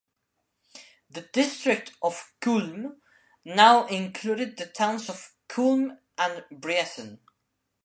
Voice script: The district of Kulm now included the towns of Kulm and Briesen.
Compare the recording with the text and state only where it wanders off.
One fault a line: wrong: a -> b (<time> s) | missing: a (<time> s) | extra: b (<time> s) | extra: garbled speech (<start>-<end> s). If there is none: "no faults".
no faults